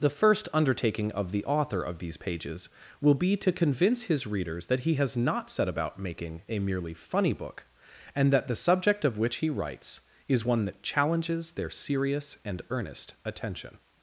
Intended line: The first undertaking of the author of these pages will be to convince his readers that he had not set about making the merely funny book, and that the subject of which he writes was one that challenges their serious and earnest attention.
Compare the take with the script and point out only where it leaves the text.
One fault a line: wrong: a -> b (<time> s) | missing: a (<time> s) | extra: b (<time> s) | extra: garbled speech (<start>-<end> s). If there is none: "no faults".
wrong: had -> has (5.0 s)
wrong: the -> a (6.5 s)
wrong: was -> is (10.3 s)